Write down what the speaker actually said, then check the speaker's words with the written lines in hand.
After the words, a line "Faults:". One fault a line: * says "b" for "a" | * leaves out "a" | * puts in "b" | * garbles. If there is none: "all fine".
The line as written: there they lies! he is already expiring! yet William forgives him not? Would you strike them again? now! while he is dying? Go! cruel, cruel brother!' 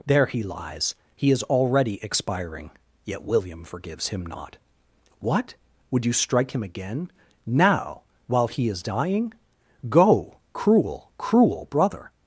there he lies! he is already expiring! yet William forgives him not! What? would you strike him again? now! while he is dying? Go! cruel, cruel brother!'
Faults:
* says "he" for "they"
* puts in "What"
* says "him" for "them"